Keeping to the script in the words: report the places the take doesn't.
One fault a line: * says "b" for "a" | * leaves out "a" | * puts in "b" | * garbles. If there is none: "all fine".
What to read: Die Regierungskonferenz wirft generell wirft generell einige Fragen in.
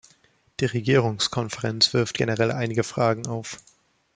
* leaves out "wirft generell"
* says "auf" for "in"